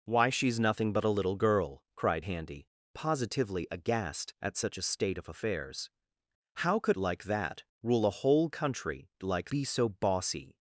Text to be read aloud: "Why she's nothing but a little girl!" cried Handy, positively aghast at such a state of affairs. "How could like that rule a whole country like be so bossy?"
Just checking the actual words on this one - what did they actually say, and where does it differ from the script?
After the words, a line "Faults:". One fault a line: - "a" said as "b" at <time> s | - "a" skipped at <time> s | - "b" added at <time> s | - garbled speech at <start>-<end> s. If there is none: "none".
"Why she's nothing but a little girl!" cried Handy, positively aghast at such a state of affairs. "How could like that rule a whole country like be so bossy?"
Faults:
none